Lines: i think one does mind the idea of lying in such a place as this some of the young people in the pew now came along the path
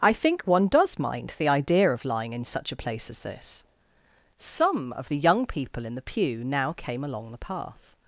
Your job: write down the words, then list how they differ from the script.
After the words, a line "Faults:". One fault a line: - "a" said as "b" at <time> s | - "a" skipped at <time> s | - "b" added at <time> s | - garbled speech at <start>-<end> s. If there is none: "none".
i think one does mind the idea of lying in such a place as this some of the young people in the pew now came along the path
Faults:
none